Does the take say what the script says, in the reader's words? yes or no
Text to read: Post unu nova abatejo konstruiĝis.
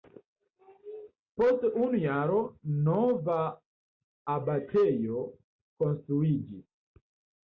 no